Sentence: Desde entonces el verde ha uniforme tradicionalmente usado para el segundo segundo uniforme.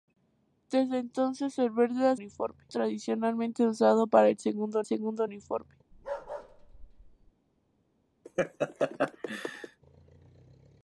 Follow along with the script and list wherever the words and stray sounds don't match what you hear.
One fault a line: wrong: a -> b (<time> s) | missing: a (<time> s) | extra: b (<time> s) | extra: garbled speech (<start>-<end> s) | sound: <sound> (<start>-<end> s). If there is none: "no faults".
sound: bark (5.9-7.3 s)
sound: laugh (8.2-9.8 s)